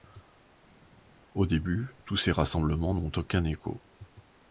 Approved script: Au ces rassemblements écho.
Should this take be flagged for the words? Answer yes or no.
yes